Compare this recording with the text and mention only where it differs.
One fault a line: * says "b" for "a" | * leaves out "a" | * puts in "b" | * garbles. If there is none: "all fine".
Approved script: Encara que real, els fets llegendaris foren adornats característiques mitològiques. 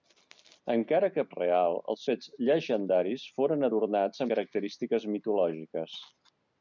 all fine